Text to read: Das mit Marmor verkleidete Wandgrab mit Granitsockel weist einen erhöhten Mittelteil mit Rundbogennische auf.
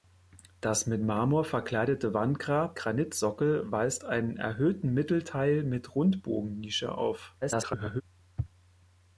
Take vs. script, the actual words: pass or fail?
fail